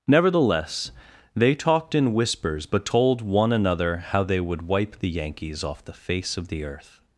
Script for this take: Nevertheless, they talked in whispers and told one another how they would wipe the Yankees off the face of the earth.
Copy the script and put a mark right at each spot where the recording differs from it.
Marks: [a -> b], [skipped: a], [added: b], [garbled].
Nevertheless, they talked in whispers [and -> but] told one another how they would wipe the Yankees off the face of the earth.